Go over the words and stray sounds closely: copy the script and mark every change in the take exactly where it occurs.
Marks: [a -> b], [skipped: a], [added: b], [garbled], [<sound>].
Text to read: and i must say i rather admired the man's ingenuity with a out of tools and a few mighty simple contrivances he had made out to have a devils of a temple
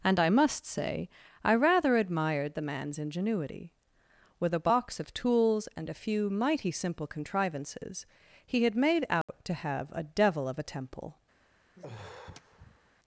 and i must say i rather admired the man's ingenuity with a [out -> box] of tools and a few mighty simple contrivances he had made out [dropout] to have a [devils -> devil] of a temple [sigh]